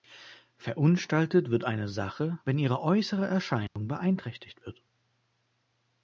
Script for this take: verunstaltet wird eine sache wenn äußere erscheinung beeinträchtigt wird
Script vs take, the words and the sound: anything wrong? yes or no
yes